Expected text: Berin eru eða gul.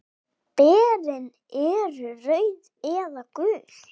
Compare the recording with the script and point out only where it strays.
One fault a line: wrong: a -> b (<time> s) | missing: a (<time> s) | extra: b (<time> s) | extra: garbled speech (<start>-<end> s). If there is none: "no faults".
extra: rauð (2.2 s)